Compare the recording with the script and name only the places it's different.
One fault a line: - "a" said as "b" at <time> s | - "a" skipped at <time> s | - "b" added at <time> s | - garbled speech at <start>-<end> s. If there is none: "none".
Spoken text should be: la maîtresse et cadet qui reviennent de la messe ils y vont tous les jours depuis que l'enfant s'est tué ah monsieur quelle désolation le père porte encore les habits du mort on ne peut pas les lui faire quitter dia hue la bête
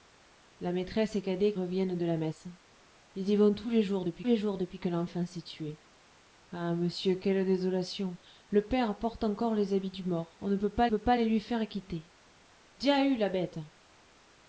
- "qui" skipped at 1.5 s
- "les jours depuis" added at 4.2 s
- "peut pas" added at 10.8 s